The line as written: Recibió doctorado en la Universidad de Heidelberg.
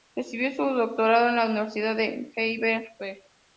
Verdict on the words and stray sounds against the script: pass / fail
fail